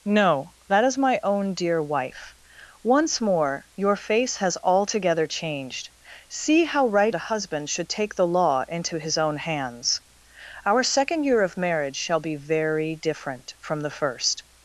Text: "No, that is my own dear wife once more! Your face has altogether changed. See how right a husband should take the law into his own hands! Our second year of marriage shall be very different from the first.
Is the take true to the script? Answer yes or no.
yes